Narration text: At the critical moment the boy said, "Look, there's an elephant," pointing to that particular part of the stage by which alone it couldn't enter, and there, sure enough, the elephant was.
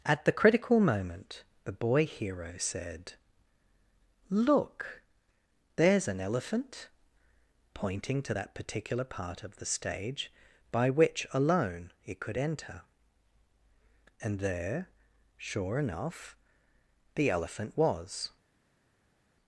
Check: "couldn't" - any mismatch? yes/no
yes